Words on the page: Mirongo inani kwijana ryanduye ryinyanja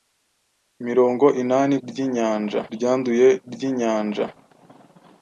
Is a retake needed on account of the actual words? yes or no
yes